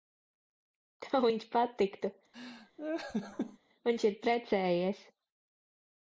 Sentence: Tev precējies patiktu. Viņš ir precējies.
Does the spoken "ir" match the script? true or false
true